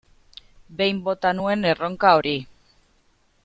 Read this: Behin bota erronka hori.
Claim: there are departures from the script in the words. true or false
true